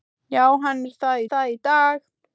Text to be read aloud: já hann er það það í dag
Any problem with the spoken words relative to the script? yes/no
no